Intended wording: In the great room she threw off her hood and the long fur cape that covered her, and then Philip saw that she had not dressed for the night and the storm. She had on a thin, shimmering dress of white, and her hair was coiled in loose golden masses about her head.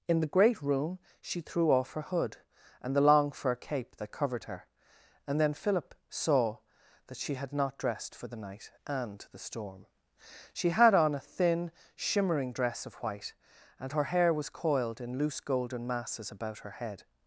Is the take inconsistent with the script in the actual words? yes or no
no